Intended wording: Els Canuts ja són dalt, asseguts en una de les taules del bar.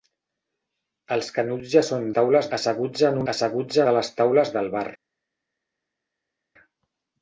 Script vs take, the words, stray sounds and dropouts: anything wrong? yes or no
yes